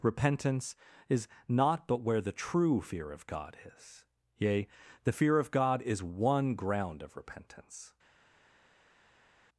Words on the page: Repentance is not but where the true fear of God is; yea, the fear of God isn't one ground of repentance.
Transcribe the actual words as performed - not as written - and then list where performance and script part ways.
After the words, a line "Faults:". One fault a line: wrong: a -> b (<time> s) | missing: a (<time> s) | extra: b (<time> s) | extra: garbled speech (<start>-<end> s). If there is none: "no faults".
Repentance is not but where the true fear of God is; yea, the fear of God is one ground of repentance.
Faults:
wrong: isn't -> is (5.8 s)